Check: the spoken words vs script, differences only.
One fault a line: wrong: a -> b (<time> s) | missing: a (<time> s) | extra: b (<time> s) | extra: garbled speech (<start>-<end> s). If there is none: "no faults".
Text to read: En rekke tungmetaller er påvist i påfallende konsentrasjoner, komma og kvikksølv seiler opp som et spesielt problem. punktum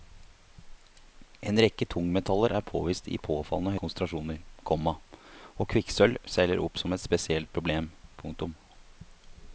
no faults